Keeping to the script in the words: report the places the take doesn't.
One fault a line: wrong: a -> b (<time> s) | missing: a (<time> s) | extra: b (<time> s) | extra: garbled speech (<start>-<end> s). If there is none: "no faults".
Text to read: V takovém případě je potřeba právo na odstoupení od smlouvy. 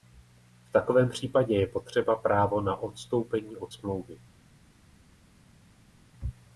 no faults